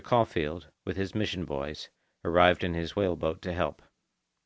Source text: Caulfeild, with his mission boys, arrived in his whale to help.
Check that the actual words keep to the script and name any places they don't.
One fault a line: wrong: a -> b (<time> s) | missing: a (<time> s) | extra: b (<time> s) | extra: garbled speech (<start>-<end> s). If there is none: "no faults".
extra: boat (3.2 s)